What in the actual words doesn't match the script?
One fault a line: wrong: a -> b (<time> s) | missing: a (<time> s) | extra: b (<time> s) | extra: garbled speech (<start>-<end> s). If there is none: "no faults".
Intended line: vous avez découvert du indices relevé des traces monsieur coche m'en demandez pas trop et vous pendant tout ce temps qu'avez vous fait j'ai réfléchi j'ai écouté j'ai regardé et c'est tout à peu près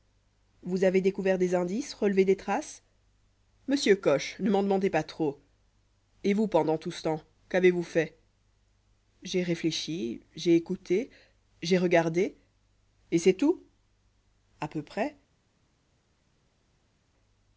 wrong: du -> des (1.4 s)
extra: ne (4.4 s)